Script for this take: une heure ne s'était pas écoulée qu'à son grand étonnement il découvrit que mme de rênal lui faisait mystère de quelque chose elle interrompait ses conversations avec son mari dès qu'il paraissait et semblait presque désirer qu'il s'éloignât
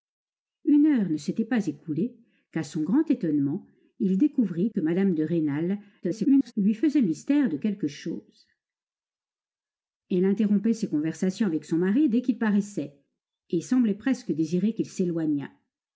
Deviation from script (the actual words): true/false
true